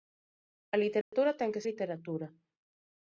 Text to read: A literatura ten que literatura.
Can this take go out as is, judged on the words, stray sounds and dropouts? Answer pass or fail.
fail